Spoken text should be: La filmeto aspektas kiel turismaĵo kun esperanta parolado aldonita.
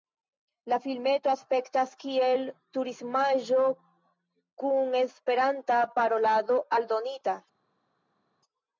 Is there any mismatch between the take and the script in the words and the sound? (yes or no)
no